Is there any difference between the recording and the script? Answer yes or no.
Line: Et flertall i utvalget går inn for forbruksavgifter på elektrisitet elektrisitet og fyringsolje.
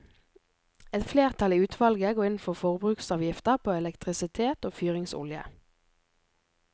yes